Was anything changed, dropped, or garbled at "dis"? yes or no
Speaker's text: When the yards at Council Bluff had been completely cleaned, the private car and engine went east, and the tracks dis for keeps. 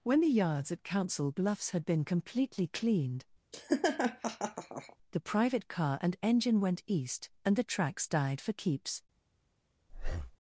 yes